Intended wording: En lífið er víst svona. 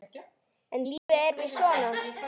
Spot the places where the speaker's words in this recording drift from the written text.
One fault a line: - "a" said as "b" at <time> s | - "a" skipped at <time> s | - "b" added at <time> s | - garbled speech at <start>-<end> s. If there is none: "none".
none